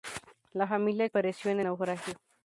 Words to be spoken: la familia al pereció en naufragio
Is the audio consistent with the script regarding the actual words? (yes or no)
yes